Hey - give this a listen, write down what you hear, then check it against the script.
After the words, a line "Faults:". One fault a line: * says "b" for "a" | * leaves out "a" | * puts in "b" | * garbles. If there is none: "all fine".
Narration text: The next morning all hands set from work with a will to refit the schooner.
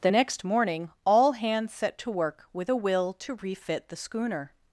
The next morning all hands set to work with a will to refit the schooner.
Faults:
* says "to" for "from"